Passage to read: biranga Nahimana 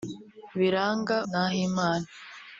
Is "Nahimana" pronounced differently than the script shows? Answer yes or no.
no